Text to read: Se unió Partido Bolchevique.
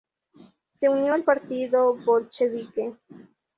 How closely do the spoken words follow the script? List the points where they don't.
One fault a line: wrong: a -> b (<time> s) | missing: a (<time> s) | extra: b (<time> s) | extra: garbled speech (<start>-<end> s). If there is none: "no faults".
extra: al (1.1 s)